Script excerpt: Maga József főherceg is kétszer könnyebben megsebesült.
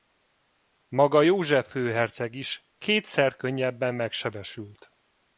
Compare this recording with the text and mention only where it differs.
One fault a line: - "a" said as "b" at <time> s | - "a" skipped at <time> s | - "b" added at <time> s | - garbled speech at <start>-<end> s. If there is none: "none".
none